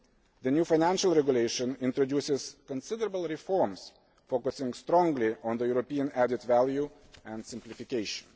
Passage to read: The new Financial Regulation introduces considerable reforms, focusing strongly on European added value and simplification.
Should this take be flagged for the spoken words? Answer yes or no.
no